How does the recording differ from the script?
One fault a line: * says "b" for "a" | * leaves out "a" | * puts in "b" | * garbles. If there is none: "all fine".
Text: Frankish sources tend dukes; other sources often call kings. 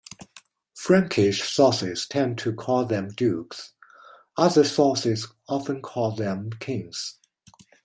* puts in "to call them"
* puts in "them"